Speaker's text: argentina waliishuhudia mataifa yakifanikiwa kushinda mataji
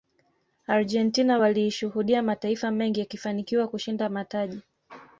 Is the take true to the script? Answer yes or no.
no